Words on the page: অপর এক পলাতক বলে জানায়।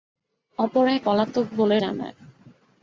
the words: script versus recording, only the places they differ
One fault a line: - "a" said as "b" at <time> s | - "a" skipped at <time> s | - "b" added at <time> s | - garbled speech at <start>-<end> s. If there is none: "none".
none